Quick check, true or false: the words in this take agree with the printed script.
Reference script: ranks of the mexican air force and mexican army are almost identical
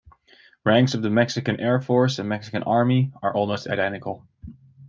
true